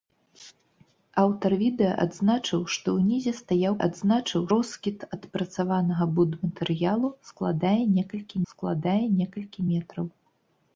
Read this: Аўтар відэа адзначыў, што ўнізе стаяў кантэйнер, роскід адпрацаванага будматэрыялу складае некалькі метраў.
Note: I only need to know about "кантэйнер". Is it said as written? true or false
false